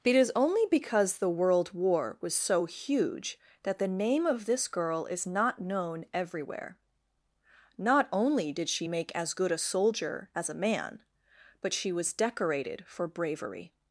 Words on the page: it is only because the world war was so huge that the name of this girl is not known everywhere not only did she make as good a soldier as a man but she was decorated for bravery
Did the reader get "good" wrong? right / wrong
right